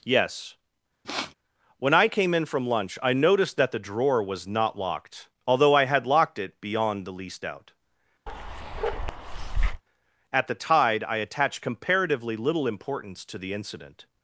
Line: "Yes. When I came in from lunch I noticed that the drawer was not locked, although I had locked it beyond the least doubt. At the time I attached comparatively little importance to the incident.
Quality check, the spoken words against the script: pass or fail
fail